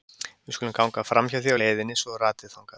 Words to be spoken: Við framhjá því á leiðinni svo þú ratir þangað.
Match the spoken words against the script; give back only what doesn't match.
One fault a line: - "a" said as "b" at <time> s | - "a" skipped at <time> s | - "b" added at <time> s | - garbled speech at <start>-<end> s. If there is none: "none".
- "skulum ganga" added at 0.6 s